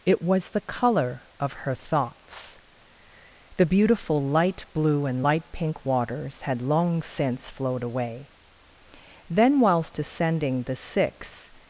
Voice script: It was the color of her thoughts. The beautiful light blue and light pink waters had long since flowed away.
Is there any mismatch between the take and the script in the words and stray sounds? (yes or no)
yes